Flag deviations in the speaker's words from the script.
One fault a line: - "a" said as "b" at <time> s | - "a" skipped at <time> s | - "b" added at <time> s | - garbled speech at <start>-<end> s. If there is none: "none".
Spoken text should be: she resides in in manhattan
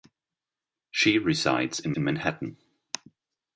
none